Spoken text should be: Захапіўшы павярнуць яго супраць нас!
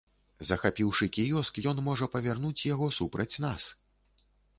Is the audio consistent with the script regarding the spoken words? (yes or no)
no